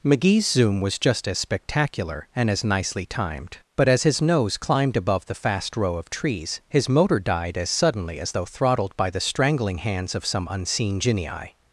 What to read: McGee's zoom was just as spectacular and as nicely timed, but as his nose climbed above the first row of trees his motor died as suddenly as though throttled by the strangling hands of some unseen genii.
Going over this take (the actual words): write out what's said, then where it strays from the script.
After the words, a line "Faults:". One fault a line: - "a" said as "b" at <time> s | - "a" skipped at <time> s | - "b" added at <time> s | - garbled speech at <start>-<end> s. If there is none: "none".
McGee's zoom was just as spectacular and as nicely timed, but as his nose climbed above the fast row of trees his motor died as suddenly as though throttled by the strangling hands of some unseen genii.
Faults:
- "first" said as "fast" at 5.3 s